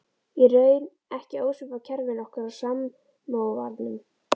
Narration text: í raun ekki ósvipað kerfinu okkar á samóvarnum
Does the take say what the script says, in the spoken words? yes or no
yes